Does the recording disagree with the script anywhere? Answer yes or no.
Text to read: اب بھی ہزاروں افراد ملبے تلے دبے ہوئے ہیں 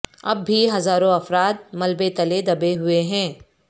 no